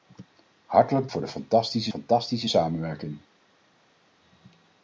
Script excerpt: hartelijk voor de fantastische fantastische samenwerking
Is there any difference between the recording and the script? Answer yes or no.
no